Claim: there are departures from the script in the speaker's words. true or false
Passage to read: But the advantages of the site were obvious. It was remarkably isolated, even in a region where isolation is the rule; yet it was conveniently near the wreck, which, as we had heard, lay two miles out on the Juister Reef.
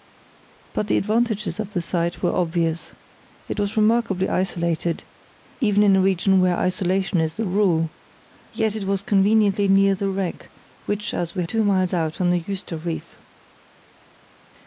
true